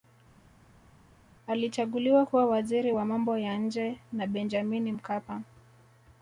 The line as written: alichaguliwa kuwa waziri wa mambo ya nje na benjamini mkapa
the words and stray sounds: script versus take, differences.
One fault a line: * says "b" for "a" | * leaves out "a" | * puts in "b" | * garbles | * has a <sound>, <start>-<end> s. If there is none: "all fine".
all fine